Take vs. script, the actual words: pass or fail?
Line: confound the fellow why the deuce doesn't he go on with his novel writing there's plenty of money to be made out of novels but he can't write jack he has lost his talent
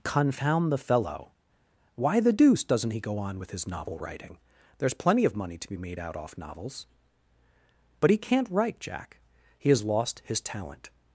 fail